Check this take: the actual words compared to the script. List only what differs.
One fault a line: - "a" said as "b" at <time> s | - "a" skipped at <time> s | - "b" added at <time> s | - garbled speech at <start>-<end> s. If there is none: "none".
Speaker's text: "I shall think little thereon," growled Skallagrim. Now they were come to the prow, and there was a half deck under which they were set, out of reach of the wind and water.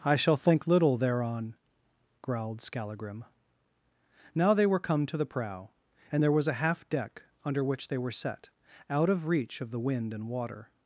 none